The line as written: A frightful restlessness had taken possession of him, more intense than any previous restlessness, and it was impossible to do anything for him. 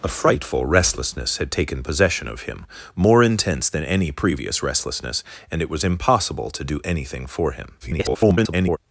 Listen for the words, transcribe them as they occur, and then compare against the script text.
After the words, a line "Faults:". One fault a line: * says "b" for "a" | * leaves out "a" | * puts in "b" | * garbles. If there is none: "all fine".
A frightful restlessness had taken possession of him, more intense than any previous restlessness, and it was impossible to do anything for him. [garbled]
Faults:
* garbles